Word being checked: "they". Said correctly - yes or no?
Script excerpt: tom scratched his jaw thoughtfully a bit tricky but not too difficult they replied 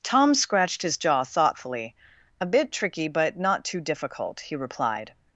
no